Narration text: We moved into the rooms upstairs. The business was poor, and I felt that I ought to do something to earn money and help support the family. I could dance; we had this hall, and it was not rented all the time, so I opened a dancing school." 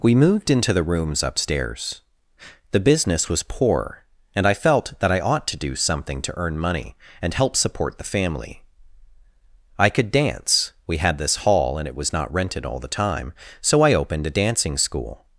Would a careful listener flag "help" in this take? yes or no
no